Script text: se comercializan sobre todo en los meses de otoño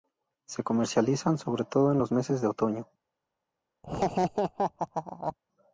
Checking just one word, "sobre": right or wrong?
right